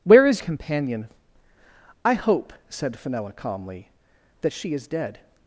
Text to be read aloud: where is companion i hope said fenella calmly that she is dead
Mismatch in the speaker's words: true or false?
false